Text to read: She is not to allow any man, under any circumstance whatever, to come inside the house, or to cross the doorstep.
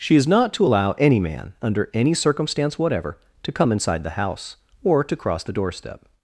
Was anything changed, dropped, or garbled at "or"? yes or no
no